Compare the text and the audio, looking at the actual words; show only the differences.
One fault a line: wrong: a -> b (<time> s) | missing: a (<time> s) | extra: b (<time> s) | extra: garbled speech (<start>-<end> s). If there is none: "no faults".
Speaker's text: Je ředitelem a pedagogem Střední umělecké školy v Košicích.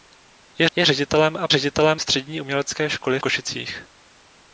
extra: je (0.7 s)
wrong: pedagogem -> ředitelem (1.5 s)
missing: v (3.2 s)